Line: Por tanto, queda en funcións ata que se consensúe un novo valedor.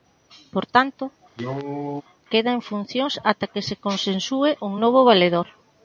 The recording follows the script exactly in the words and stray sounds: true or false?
false